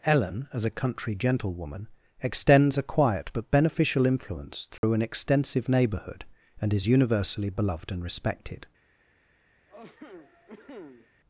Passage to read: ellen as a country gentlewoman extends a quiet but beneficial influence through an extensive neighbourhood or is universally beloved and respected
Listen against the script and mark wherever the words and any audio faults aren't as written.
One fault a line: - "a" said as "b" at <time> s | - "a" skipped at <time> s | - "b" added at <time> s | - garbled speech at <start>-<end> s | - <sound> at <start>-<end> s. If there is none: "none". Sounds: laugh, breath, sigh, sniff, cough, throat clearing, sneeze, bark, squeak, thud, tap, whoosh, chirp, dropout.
- dropout at 4.8-4.8 s
- "or" said as "and" at 6.6 s
- cough at 9.7-11.1 s